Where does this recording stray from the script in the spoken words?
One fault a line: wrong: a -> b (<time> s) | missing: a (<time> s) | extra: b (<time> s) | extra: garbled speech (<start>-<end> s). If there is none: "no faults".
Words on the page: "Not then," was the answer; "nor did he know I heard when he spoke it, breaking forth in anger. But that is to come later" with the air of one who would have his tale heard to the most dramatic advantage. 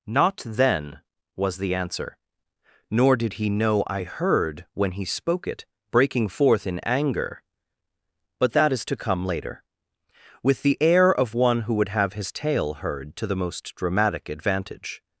no faults